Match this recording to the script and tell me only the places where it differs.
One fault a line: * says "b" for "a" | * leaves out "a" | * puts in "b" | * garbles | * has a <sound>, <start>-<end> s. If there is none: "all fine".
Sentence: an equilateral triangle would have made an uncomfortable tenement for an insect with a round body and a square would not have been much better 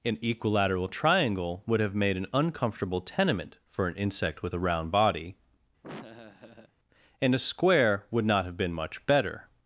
* has a laugh, 5.8-6.7 s